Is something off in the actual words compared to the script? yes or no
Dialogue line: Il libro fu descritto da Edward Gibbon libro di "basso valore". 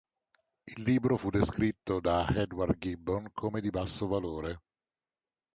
yes